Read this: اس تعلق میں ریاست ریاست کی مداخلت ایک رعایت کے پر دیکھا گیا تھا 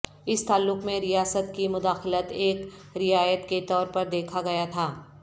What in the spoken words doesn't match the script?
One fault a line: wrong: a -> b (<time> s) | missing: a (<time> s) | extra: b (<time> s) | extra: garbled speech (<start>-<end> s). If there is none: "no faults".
missing: ریاست (1.5 s)
extra: طور (3.7 s)